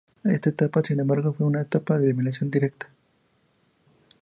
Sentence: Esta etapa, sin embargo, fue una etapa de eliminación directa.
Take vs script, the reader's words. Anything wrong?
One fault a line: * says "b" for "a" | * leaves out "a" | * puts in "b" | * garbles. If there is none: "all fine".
all fine